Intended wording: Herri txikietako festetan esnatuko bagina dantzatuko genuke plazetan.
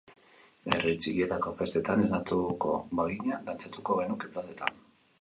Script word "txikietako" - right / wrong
right